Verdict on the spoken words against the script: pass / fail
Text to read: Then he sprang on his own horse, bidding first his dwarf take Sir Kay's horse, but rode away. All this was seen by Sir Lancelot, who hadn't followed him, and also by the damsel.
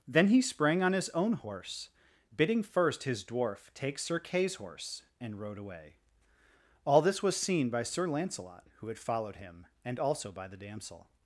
fail